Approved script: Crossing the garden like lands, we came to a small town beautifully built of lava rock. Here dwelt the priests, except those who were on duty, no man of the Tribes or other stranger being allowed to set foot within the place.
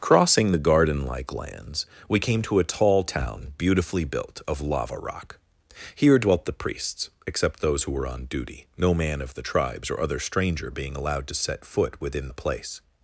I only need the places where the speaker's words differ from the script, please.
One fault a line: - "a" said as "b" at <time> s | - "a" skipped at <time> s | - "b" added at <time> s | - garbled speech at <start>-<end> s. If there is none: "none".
- "small" said as "tall" at 2.6 s